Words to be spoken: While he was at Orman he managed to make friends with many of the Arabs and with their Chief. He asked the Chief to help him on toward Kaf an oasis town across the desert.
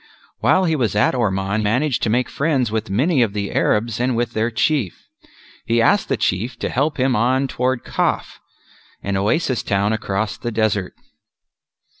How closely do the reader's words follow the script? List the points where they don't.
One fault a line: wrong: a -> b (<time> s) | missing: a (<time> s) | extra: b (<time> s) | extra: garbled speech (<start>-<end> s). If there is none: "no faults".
missing: he (1.6 s)